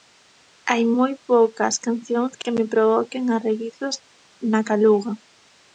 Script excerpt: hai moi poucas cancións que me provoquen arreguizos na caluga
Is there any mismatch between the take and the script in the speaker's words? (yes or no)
no